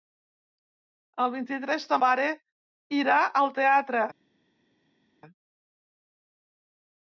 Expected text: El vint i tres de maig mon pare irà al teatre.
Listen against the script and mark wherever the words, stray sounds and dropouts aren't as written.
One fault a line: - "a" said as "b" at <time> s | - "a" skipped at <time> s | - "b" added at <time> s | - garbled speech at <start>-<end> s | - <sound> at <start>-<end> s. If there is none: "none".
- "maig mon" skipped at 2.0 s